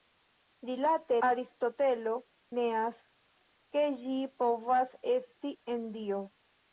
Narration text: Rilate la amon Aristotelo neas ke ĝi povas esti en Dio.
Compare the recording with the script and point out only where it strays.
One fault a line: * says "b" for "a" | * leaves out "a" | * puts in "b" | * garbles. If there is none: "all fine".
* leaves out "la amon"